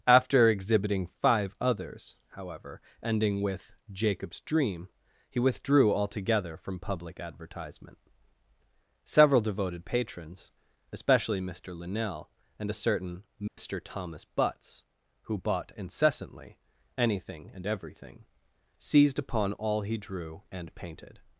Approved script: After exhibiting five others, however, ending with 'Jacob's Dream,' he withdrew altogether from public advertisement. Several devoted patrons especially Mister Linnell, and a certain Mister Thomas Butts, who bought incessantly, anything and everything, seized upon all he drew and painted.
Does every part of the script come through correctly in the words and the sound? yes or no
no